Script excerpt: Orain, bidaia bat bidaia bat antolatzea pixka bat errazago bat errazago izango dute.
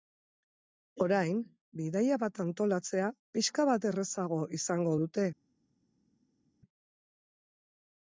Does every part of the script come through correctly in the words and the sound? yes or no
no